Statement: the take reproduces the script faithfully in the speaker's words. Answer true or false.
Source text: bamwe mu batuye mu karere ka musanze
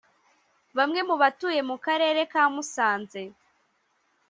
true